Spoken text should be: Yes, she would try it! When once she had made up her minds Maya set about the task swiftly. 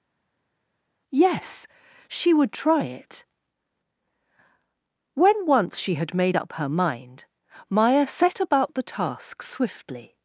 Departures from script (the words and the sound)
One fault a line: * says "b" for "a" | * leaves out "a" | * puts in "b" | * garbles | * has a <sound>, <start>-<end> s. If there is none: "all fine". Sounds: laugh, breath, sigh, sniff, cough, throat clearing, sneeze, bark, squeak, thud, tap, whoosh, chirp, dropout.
* says "mind" for "minds"